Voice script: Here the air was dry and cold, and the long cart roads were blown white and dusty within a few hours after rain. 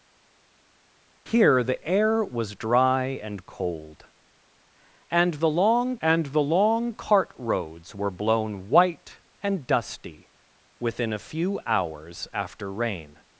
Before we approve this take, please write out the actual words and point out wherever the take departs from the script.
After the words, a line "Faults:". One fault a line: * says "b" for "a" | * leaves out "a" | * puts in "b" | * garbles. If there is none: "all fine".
Here the air was dry and cold, and the long and the long cart roads were blown white and dusty within a few hours after rain.
Faults:
* puts in "and the long"